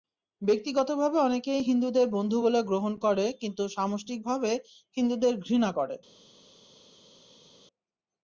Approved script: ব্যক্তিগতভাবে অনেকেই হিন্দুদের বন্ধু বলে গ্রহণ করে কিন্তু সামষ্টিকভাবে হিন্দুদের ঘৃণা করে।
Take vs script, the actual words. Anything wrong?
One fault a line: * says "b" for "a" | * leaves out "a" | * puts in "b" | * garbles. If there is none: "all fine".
all fine